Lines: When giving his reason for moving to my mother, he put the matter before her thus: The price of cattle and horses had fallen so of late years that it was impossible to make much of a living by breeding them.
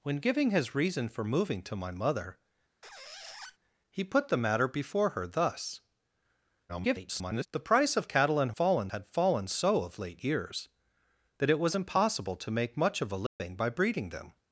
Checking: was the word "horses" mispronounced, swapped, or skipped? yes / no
yes